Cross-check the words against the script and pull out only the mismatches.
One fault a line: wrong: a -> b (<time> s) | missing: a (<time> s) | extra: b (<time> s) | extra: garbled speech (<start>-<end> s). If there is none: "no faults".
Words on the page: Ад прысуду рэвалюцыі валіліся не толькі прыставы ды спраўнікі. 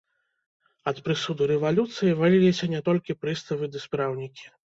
no faults